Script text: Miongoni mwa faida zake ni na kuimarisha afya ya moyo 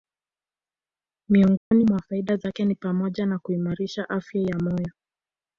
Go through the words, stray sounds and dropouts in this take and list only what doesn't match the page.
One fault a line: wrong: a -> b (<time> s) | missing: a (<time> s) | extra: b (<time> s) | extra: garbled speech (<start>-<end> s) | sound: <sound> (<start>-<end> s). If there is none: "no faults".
sound: dropout (1.6-1.7 s)
extra: pamoja (2.8 s)